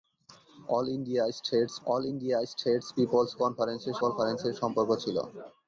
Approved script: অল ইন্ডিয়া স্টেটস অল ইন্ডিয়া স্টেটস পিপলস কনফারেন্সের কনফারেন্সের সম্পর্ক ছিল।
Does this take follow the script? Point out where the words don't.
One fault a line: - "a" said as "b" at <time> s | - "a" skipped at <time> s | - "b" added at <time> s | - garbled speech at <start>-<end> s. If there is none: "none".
none